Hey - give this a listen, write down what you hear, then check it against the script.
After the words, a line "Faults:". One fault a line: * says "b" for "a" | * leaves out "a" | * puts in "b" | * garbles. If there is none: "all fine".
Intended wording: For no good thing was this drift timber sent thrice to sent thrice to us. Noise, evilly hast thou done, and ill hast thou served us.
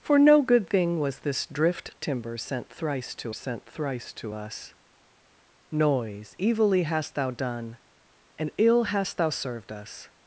For no good thing was this drift timber sent thrice to sent thrice to us. Noise, evilly hast thou done, and ill hast thou served us.
Faults:
all fine